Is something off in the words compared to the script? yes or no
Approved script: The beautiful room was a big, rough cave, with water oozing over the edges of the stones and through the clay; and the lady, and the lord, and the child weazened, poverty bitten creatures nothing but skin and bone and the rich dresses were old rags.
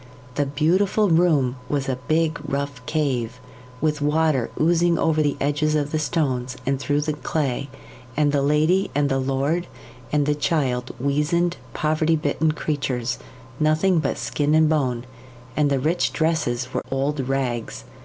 no